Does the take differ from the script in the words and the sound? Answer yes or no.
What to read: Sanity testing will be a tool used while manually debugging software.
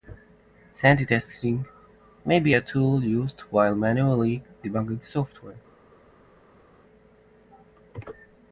yes